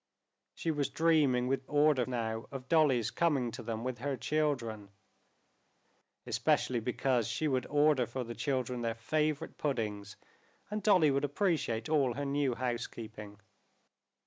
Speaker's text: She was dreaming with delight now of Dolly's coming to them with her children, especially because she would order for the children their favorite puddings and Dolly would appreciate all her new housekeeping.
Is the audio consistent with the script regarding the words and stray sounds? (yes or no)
no